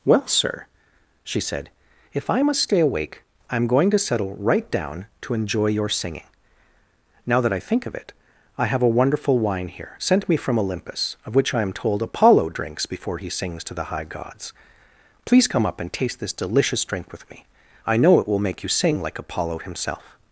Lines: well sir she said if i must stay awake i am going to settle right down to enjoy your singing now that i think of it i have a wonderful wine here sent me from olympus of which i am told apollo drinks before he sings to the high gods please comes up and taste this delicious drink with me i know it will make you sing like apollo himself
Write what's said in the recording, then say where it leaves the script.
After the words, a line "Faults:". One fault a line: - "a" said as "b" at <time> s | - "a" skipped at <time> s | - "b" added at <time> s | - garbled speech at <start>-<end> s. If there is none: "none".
well sir she said if i must stay awake i am going to settle right down to enjoy your singing now that i think of it i have a wonderful wine here sent me from olympus of which i am told apollo drinks before he sings to the high gods please come up and taste this delicious drink with me i know it will make you sing like apollo himself
Faults:
- "comes" said as "come" at 15.5 s